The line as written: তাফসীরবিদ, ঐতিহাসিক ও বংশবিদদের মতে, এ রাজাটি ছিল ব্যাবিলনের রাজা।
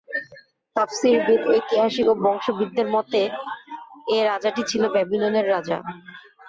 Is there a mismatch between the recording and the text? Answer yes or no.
no